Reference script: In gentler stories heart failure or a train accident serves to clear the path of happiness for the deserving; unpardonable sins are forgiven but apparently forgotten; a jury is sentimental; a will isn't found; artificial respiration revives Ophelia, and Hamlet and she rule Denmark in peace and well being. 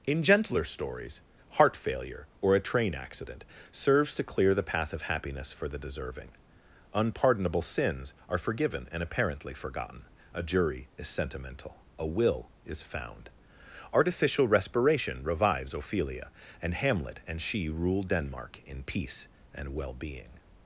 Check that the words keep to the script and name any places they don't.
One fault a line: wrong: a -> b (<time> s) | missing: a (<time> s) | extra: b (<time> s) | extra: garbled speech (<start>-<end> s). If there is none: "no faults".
wrong: but -> and (8.9 s)
wrong: isn't -> is (12.7 s)